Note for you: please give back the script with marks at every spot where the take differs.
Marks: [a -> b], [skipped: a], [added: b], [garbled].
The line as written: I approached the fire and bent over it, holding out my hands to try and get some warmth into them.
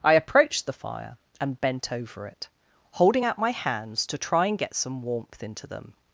I approached the fire and bent over it, holding out my hands to try and get some warmth into them.